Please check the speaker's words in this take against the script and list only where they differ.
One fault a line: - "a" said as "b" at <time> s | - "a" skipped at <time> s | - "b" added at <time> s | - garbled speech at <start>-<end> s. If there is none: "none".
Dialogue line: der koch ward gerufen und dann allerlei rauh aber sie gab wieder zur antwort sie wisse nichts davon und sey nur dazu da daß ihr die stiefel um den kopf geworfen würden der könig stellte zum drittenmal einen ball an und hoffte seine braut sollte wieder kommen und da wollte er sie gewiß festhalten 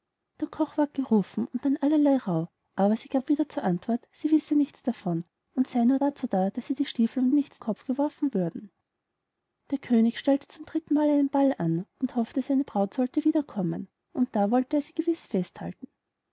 - "den" said as "nichts" at 7.3 s